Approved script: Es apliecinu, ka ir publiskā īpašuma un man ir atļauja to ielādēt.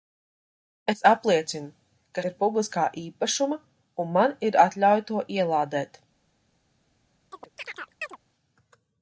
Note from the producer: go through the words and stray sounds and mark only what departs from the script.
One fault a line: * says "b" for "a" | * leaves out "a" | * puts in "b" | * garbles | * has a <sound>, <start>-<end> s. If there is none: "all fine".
* has a chirp, 7.3-8.2 s